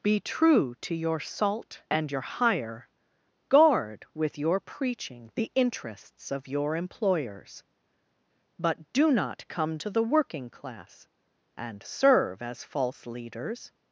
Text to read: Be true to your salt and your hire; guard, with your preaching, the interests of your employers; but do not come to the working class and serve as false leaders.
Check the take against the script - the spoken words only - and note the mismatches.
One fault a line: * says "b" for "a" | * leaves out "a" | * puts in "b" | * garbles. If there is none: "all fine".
all fine